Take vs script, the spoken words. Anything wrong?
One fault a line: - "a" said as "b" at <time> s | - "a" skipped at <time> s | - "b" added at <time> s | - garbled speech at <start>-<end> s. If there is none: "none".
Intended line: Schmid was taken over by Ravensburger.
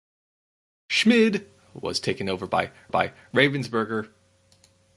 - "by" added at 2.9 s